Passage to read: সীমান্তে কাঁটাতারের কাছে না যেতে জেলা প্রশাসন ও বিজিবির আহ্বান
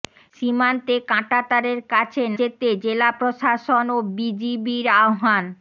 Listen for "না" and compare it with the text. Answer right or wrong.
wrong